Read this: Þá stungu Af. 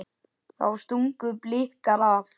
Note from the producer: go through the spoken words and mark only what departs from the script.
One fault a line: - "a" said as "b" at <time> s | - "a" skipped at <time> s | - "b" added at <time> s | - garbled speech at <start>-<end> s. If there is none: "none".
- "Blikar" added at 1.4 s